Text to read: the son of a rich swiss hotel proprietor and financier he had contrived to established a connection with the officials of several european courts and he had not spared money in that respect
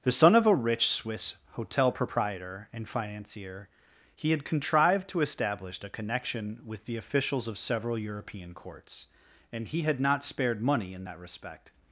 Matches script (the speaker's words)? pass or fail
fail